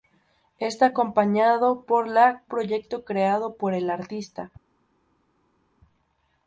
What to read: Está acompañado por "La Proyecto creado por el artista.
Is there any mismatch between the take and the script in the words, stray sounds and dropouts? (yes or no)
no